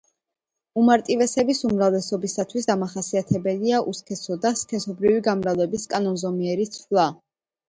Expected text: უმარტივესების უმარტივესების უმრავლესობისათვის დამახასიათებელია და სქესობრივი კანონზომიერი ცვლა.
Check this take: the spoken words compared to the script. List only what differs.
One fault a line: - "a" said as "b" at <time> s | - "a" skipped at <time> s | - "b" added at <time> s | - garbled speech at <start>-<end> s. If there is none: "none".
- "უმარტივესების" skipped at 1.6 s
- "უსქესო" added at 3.9 s
- "გამრავლების" added at 5.3 s